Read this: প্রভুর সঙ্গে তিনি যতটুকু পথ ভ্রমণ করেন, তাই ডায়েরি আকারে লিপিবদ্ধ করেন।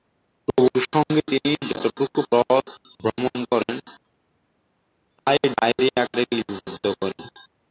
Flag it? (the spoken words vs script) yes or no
no